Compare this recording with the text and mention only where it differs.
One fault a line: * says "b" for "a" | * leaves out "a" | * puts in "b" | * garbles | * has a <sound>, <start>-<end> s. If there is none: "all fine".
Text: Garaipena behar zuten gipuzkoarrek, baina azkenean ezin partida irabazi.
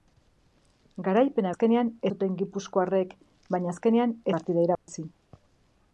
* says "azkenean" for "behar"
* leaves out "ezin"
* has a dropout, 4.8-4.9 s